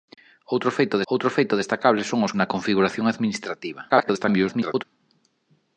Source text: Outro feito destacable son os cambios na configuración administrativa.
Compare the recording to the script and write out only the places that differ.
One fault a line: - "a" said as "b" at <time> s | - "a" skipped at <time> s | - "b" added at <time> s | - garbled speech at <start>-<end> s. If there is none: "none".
- "outro feito" added at 1.1 s
- "cambios" skipped at 2.3 s
- garbled speech at 3.9-4.8 s